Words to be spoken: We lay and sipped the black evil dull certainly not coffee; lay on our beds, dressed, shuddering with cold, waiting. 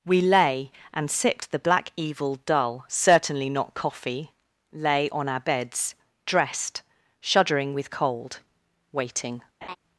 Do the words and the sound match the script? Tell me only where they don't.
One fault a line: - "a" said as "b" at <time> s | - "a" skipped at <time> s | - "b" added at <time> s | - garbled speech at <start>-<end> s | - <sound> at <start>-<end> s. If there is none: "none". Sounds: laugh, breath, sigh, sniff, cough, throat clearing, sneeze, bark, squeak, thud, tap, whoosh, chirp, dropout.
- laugh at 9.6-9.8 s